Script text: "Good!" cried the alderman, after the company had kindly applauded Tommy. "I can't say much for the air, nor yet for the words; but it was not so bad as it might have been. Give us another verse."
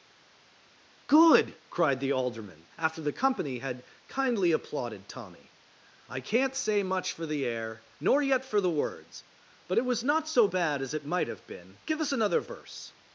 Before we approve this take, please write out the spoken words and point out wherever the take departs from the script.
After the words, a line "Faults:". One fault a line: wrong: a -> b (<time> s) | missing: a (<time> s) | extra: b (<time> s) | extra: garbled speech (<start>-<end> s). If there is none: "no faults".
"Good!" cried the alderman, after the company had kindly applauded Tommy. "I can't say much for the air, nor yet for the words; but it was not so bad as it might have been. Give us another verse."
Faults:
no faults